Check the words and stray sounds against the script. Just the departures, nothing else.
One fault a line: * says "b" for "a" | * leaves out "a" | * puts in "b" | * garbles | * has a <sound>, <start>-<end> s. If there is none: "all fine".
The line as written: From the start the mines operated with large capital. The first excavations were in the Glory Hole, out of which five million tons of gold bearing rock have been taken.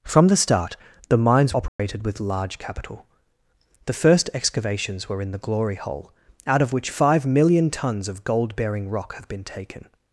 * has a dropout, 1.7-1.8 s